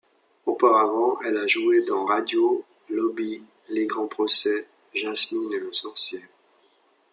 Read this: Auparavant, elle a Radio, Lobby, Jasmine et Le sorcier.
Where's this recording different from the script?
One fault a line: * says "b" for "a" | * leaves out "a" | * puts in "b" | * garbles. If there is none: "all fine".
* puts in "joué dans"
* puts in "Les Grands procès"